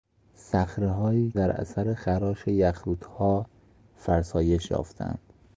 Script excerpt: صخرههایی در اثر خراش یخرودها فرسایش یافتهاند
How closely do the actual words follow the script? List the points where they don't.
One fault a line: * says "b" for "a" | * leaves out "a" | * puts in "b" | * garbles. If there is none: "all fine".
all fine